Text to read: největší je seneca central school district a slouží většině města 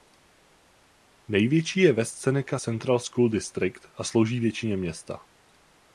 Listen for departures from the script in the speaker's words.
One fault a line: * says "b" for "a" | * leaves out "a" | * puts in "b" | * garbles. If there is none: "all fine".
* puts in "west"